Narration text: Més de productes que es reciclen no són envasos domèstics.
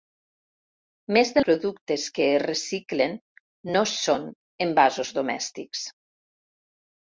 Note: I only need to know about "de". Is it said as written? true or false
true